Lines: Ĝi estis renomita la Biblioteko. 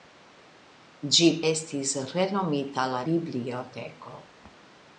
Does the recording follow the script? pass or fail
pass